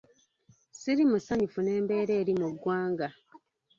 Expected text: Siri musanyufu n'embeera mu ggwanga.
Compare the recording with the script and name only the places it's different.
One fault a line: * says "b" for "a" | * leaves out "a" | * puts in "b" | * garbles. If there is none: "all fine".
* puts in "eri"